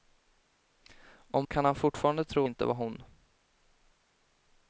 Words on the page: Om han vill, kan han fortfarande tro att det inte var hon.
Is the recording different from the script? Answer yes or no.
yes